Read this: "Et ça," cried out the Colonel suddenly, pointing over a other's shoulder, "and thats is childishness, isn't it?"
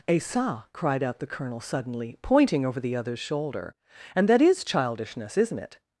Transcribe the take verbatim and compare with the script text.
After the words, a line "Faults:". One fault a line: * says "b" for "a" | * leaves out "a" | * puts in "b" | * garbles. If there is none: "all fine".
"Et ça," cried out the Colonel suddenly, pointing over the other's shoulder, "and that is childishness, isn't it?"
Faults:
* says "the" for "a"
* says "that" for "thats"